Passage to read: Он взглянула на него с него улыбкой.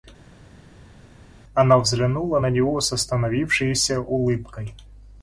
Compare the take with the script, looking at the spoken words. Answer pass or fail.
fail